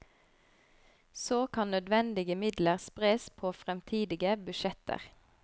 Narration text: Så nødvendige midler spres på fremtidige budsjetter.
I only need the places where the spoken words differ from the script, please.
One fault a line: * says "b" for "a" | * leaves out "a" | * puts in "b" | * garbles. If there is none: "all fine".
* puts in "kan"